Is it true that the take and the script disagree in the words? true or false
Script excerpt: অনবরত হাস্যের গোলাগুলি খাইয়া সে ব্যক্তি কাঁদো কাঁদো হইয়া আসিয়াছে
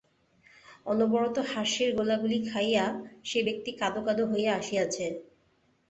false